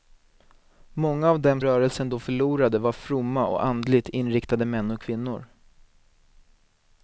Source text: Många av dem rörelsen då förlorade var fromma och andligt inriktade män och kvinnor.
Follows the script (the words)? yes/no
yes